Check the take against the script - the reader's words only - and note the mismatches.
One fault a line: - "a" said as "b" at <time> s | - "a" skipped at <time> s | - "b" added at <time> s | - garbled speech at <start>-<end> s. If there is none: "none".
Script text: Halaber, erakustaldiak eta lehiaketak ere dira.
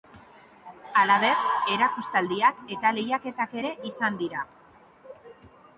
- "izan" added at 3.9 s